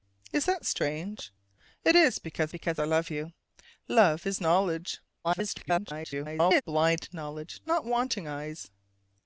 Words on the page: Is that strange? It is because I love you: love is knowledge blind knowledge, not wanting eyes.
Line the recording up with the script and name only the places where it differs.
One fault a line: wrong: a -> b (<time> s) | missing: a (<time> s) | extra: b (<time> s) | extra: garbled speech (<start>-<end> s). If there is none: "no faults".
extra: because (2.5 s)
extra: garbled speech (5.2-6.6 s)